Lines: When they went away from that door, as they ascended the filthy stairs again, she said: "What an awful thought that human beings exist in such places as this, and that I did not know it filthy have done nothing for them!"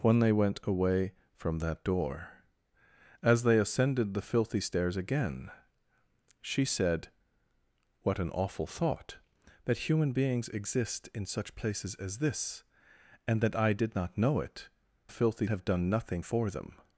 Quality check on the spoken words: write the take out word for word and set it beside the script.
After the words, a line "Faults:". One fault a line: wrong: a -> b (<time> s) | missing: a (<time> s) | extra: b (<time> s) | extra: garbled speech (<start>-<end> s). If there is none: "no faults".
When they went away from that door, as they ascended the filthy stairs again, she said: "What an awful thought that human beings exist in such places as this, and that I did not know it filthy have done nothing for them!"
Faults:
no faults